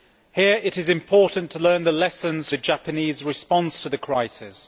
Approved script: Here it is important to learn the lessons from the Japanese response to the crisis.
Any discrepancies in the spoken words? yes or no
yes